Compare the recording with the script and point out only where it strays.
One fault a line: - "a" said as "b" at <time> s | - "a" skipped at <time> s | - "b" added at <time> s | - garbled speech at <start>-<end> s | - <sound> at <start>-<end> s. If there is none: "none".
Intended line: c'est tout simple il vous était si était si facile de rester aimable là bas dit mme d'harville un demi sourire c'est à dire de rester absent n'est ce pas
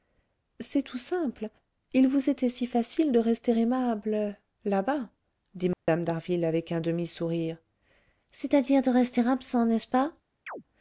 - "était si" skipped at 2.7 s
- dropout at 5.7-5.9 s
- "avec" added at 6.4 s
- chirp at 10.5-10.6 s